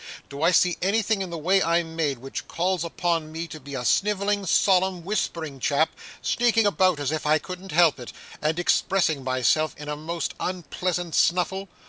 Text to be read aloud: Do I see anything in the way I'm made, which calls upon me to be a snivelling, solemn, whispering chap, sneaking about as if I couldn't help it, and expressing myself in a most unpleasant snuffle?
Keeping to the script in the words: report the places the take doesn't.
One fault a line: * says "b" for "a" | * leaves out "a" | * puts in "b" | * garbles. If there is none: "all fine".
all fine